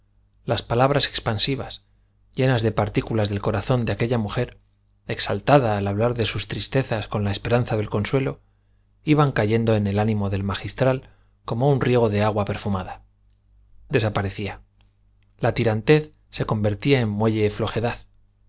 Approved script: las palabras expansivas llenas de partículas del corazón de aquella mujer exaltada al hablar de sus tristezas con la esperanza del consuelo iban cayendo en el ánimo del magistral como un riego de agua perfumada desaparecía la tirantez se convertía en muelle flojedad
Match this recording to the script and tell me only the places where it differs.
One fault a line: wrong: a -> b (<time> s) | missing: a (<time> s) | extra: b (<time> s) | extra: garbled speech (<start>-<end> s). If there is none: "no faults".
no faults